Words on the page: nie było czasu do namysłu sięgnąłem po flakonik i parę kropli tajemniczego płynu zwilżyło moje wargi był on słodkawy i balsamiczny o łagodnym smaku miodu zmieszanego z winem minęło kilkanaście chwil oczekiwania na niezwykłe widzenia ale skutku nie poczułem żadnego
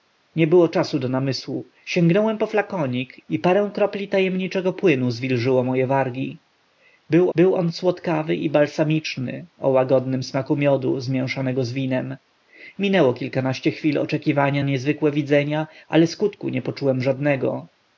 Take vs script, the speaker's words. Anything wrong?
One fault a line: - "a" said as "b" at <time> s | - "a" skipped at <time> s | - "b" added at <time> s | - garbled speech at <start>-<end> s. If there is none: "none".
- "był" added at 7.3 s
- "na" skipped at 14.6 s